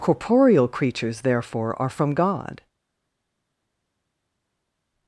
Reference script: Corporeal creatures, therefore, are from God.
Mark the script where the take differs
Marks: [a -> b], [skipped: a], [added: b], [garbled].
Corporeal creatures, therefore, are from God.